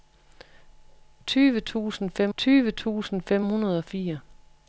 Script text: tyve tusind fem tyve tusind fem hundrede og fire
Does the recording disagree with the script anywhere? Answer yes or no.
no